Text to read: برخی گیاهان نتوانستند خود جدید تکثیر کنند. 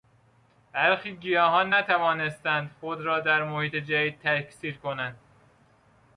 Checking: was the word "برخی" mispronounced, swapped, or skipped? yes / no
no